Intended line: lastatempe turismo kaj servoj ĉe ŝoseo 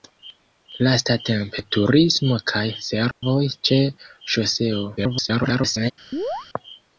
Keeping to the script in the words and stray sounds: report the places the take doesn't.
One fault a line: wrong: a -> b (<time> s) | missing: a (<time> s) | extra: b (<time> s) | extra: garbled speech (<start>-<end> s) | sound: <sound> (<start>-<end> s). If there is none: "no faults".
sound: dropout (3.1-3.2 s)
extra: garbled speech (5.0-5.9 s)
sound: chirp (6.1-6.5 s)